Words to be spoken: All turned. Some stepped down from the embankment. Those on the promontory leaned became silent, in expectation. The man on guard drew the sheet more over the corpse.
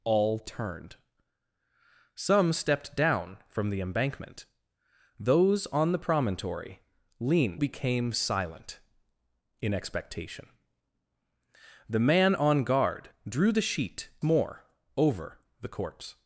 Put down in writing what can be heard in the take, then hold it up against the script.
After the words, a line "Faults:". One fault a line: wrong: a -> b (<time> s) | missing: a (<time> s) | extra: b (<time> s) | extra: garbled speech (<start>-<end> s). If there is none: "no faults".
All turned. Some stepped down from the embankment. Those on the promontory leaned became silent, in expectation. The man on guard drew the sheet more over the corpse.
Faults:
no faults